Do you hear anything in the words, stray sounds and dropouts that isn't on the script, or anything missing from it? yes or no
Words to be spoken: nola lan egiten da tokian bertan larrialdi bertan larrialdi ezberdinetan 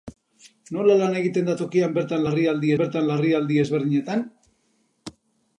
no